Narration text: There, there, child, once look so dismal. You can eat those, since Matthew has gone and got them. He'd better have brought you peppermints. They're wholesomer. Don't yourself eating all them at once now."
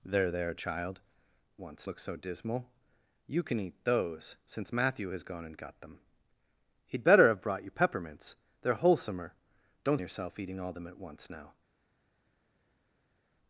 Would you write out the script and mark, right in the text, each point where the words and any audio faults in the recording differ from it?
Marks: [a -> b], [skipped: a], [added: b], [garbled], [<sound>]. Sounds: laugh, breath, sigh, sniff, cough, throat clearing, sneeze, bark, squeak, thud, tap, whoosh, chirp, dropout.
There, there, child, once look so dismal. You can eat those, since Matthew has gone and got them. He'd better have brought you peppermints. They're wholesomer. Don't yourself eating all them at once now."